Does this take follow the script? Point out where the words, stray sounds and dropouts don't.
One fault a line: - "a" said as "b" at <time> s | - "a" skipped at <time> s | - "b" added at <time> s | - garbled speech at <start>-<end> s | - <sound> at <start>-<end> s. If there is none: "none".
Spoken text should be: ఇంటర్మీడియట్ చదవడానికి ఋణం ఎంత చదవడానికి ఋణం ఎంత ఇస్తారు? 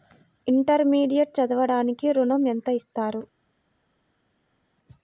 - "చదవడానికి ఋణం ఎంత" skipped at 2.7 s